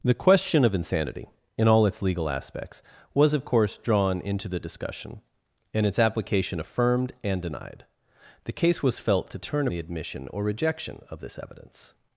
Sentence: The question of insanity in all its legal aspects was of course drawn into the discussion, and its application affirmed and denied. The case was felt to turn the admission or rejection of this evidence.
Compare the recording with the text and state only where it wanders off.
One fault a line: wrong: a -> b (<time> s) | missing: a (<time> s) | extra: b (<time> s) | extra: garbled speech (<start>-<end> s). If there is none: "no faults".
no faults